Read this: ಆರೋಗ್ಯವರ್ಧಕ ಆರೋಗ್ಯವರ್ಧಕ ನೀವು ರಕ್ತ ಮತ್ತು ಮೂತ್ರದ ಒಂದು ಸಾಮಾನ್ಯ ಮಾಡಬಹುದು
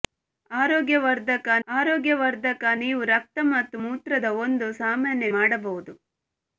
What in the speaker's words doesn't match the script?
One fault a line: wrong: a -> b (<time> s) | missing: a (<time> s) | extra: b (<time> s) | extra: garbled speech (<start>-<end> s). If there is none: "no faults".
no faults